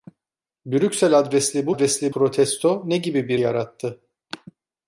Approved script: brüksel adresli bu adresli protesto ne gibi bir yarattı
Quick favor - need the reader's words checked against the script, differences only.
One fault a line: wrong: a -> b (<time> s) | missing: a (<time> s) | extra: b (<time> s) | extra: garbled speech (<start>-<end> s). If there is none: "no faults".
no faults